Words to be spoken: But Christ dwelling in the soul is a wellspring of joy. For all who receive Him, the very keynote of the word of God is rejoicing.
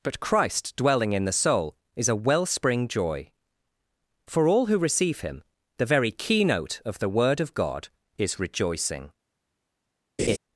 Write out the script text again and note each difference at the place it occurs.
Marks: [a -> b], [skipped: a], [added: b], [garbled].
But Christ dwelling in the soul is a wellspring [skipped: of] joy. For all who receive Him, the very keynote of the word of God is rejoicing.